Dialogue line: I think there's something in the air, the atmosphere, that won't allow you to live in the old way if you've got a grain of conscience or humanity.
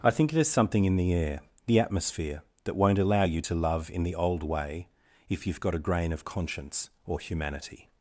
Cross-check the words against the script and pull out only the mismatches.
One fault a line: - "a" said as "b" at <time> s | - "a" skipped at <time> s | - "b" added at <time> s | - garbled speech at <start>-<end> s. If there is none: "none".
- "live" said as "love" at 3.5 s